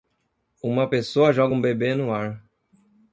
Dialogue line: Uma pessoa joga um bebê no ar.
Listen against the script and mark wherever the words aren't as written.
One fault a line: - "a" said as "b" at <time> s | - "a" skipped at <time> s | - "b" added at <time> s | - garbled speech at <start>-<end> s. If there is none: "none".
none